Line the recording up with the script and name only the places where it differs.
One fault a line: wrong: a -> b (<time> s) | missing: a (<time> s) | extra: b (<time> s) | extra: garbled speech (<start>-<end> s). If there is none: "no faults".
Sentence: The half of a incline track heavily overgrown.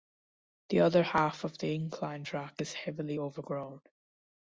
extra: other (0.8 s)
wrong: a -> the (1.6 s)
extra: is (2.6 s)